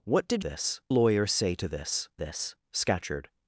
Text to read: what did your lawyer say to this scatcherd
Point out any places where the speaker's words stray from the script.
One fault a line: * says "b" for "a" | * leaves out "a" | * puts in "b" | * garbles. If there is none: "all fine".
* says "this" for "your"
* puts in "this"